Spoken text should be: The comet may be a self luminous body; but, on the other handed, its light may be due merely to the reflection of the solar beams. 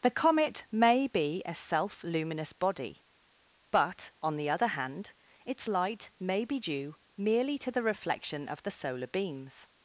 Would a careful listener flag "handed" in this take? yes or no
yes